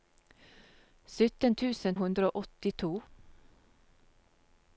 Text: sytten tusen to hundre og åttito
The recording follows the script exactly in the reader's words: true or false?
false